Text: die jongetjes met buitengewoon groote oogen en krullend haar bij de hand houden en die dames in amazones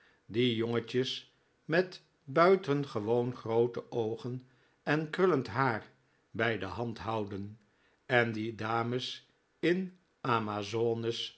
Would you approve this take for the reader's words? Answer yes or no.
yes